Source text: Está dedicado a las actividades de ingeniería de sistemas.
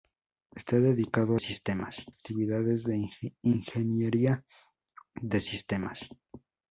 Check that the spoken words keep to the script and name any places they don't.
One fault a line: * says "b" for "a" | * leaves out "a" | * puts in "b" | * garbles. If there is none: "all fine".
* says "sistemas" for "las"